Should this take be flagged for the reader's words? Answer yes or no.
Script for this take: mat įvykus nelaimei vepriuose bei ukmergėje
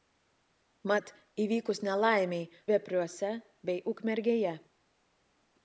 no